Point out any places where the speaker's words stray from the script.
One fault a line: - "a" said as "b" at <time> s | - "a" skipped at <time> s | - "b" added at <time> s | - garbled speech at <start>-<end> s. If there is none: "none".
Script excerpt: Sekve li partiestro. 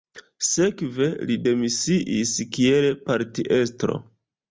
- "demisiis kiel" added at 1.5 s